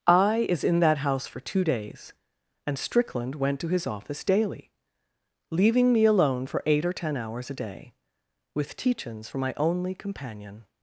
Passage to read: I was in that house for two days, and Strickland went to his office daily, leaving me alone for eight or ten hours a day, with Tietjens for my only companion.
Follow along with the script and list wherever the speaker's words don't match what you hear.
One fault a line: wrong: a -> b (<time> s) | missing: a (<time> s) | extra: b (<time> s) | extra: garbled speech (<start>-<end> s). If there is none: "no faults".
wrong: was -> is (0.5 s)